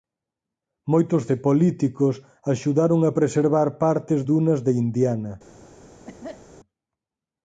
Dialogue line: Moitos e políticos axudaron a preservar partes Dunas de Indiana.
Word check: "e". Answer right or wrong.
right